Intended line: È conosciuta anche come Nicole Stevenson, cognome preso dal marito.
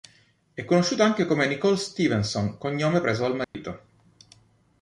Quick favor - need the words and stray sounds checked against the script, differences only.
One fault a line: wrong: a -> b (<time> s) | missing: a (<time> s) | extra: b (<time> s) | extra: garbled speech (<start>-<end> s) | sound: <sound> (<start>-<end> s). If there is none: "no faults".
sound: dropout (3.4-3.5 s)